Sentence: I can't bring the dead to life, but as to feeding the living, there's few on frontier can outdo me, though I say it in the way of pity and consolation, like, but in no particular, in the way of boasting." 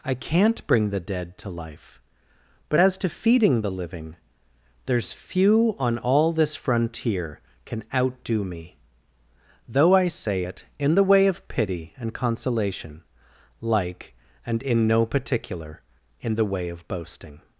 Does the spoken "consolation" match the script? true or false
true